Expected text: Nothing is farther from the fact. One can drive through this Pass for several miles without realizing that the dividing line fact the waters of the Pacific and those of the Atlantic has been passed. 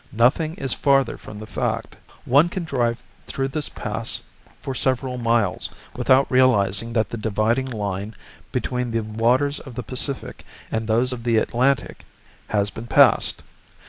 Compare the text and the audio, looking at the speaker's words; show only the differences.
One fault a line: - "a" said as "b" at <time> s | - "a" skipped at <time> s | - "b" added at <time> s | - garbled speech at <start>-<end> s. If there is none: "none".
- "fact" said as "between" at 8.5 s